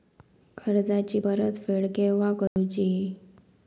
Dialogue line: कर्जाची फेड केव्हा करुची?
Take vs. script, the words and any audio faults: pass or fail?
fail